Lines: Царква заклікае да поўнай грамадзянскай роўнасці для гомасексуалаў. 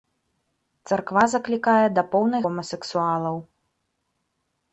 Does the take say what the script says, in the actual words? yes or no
no